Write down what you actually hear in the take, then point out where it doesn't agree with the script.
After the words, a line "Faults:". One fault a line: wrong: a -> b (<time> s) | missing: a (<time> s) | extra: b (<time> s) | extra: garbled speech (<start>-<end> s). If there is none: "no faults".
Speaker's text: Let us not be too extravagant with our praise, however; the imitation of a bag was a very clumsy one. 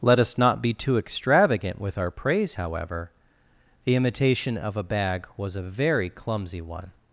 Let us not be too extravagant with our praise, however; the imitation of a bag was a very clumsy one.
Faults:
no faults